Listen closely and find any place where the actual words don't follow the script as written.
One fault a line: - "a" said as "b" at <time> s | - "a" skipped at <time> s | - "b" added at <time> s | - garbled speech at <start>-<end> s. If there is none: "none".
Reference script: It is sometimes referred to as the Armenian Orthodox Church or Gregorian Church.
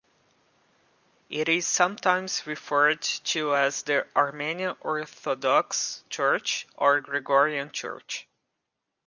none